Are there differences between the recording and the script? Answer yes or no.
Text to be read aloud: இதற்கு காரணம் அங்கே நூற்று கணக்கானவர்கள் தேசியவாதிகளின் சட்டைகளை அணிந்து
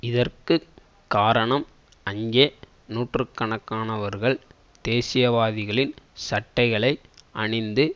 no